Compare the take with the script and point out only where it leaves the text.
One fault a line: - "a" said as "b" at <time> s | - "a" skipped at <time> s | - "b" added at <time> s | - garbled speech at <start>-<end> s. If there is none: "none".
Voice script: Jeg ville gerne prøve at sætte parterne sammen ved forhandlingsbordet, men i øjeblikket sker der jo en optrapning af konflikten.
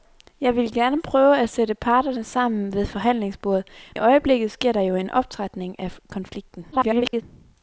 - "men" skipped at 3.7 s
- garbled speech at 6.7-7.2 s